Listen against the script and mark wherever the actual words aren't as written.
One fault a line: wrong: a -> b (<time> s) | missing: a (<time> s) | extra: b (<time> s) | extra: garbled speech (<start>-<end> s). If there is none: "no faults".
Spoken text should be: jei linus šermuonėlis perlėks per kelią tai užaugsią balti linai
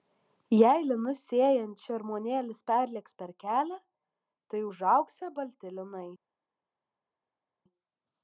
extra: sėjant (1.3 s)